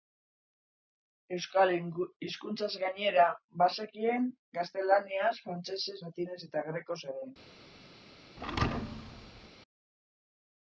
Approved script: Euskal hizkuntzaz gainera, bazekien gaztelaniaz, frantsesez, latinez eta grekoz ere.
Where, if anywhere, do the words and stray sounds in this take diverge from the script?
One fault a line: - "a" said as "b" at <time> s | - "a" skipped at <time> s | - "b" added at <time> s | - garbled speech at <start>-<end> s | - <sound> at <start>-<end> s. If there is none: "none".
- thud at 8.4-9.5 s